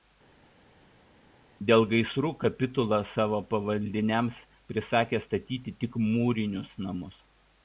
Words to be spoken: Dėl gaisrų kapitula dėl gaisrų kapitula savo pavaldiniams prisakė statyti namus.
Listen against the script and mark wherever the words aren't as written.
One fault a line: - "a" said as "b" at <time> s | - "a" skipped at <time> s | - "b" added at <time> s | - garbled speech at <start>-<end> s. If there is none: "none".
- "dėl gaisrų kapitula" skipped at 3.0 s
- "tik mūrinius" added at 5.9 s